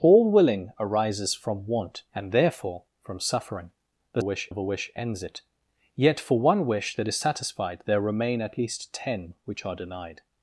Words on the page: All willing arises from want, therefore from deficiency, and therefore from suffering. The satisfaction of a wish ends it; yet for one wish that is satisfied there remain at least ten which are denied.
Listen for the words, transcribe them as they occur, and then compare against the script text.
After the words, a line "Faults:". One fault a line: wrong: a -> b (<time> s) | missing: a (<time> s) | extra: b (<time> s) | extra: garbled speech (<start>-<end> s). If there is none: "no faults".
All willing arises from want, and therefore from suffering. The wish of a wish ends it; yet for one wish that is satisfied there remain at least ten which are denied.
Faults:
missing: therefore from deficiency (2.0 s)
wrong: satisfaction -> wish (4.2 s)